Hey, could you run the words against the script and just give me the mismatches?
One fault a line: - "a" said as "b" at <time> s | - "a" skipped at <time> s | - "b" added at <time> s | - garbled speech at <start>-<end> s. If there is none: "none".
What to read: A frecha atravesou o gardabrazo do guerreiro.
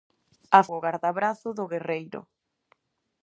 - "frecha atravesou" skipped at 0.6 s